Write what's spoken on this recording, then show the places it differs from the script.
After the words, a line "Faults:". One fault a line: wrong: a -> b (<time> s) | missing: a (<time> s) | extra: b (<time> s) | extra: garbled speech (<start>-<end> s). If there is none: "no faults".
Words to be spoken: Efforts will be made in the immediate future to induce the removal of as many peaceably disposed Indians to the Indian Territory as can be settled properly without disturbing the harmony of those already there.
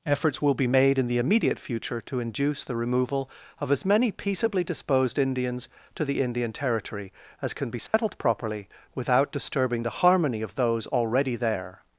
Efforts will be made in the immediate future to induce the removal of as many peaceably disposed Indians to the Indian Territory as can be settled properly without disturbing the harmony of those already there.
Faults:
no faults